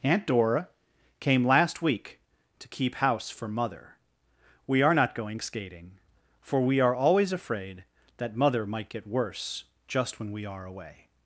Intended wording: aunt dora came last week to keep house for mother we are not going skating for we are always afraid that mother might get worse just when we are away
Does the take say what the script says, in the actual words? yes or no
yes